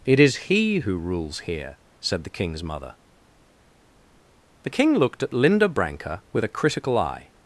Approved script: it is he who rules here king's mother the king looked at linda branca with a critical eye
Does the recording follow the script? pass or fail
fail